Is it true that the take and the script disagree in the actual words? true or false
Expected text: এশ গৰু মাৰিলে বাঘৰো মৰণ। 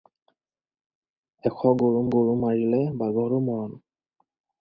true